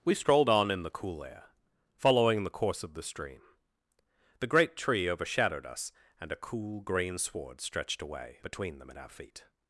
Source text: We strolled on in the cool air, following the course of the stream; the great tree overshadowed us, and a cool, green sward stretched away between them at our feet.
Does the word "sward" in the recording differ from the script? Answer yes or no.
no